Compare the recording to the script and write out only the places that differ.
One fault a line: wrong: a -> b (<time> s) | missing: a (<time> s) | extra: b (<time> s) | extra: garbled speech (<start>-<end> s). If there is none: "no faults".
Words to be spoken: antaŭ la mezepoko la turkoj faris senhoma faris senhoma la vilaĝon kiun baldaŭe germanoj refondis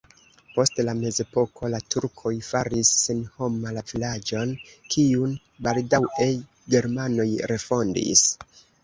wrong: antaŭ -> post (0.5 s)
missing: faris senhoma (3.7 s)